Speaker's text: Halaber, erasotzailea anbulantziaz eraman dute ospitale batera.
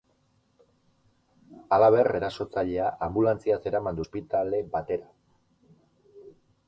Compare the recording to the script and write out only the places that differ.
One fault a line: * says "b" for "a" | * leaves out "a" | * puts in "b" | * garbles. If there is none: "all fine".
* leaves out "dute"